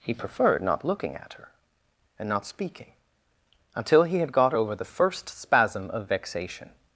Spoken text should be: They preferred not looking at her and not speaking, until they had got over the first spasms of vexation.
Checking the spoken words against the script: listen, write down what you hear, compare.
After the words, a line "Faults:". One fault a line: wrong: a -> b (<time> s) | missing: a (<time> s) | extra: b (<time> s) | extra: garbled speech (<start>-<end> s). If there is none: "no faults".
He preferred not looking at her and not speaking, until he had got over the first spasm of vexation.
Faults:
wrong: They -> He (0.0 s)
wrong: they -> he (4.0 s)
wrong: spasms -> spasm (5.3 s)